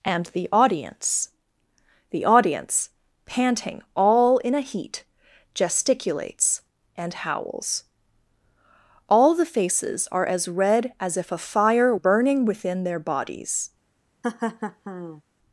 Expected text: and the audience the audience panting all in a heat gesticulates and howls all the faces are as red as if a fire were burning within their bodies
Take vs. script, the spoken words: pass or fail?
fail